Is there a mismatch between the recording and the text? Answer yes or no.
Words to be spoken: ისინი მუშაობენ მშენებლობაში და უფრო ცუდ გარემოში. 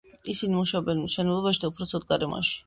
no